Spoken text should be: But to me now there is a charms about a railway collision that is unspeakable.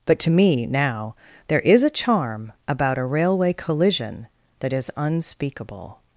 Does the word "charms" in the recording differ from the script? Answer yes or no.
yes